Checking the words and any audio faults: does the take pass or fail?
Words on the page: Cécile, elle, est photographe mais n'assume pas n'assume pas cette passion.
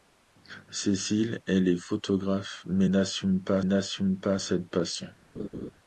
fail